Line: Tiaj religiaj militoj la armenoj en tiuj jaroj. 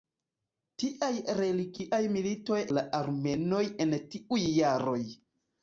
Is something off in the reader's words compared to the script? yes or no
no